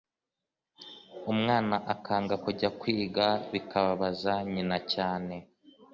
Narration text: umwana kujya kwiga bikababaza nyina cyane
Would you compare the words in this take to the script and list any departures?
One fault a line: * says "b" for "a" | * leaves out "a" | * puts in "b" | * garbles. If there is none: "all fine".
* puts in "akanga"